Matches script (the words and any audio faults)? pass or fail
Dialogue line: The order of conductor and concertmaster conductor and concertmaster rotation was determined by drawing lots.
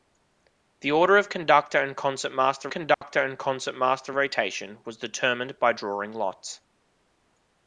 fail